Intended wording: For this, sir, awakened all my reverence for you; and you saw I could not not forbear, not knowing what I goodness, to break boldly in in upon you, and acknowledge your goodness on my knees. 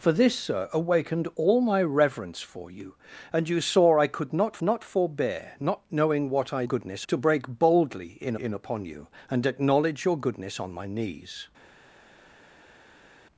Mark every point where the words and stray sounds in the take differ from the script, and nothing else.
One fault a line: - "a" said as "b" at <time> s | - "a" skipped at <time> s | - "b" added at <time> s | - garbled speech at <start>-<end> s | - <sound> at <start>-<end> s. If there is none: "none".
none